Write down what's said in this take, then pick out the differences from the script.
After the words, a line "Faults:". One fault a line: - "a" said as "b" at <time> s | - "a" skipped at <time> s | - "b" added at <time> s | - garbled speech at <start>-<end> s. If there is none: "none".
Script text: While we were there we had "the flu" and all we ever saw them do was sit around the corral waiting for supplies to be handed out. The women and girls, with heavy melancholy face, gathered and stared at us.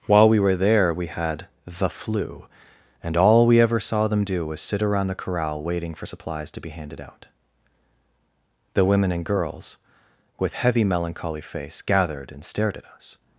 While we were there we had "the flu" and all we ever saw them do was sit around the corral waiting for supplies to be handed out. The women and girls, with heavy melancholy face, gathered and stared at us.
Faults:
none